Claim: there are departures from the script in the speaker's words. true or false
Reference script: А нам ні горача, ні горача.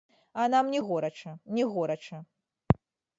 false